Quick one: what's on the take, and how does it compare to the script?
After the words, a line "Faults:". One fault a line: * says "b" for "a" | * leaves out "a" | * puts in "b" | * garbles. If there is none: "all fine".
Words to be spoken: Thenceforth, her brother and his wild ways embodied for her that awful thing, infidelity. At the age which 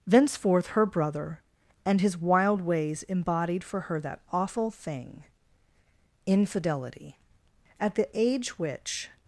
Thenceforth, her brother and his wild ways embodied for her that awful thing, infidelity. At the age which
Faults:
all fine